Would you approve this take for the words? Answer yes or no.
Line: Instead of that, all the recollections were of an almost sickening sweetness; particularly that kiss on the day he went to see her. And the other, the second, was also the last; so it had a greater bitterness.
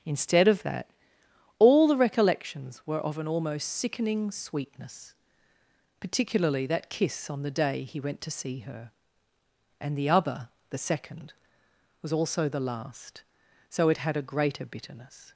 yes